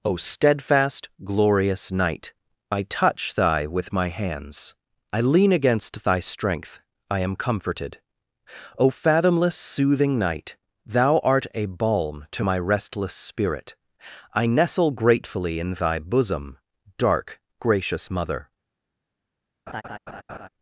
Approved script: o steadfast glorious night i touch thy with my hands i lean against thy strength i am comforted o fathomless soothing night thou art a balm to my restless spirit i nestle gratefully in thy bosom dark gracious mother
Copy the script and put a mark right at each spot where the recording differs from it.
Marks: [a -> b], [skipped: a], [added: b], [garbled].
o steadfast glorious night i touch thy with my hands i lean against thy strength i am comforted o fathomless soothing night thou art a balm to my restless spirit i nestle gratefully in thy bosom dark gracious mother